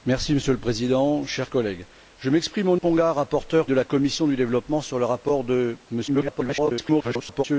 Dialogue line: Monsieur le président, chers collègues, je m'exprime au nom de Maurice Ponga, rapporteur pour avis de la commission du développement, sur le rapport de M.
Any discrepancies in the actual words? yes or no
yes